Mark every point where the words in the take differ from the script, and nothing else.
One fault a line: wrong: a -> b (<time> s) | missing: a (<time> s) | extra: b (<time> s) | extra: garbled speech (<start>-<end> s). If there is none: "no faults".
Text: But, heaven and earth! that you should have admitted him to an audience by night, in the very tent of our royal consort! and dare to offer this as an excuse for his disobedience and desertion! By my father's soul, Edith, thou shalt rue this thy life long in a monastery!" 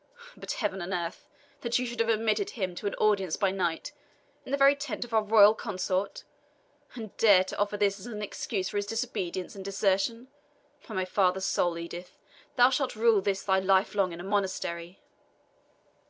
no faults